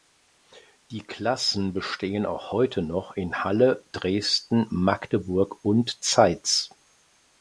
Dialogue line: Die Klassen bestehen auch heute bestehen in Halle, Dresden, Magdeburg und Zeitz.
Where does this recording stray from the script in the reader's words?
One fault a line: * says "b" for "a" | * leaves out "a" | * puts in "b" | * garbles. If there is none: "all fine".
* says "noch" for "bestehen"